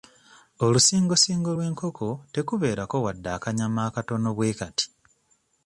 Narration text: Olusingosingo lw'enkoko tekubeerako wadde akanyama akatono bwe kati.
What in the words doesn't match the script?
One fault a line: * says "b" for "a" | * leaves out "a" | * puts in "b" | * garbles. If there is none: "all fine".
all fine